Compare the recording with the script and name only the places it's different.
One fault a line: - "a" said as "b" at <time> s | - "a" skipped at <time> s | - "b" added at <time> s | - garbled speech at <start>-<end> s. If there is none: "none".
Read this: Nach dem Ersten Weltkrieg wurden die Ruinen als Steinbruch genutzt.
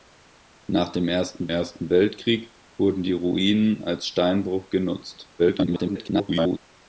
- "Ersten" added at 1.5 s
- garbled speech at 5.4-6.6 s